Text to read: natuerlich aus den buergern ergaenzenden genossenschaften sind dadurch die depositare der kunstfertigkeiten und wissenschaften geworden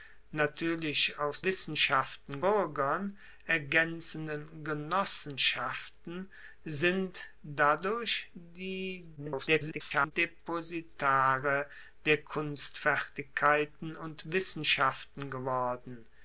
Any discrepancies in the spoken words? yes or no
yes